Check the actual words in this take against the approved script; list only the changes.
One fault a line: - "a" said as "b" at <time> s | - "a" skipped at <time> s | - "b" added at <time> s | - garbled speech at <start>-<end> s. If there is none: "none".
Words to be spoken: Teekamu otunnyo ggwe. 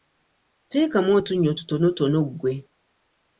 - "tutonotono" added at 1.6 s